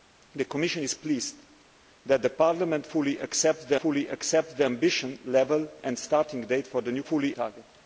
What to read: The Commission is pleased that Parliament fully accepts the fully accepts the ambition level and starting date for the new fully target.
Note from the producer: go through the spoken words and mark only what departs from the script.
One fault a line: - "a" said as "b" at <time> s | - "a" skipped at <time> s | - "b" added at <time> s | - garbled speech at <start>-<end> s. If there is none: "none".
none